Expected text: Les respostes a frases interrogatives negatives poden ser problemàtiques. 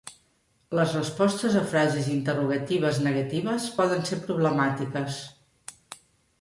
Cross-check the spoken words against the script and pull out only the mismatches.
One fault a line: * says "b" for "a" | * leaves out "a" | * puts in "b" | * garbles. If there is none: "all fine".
all fine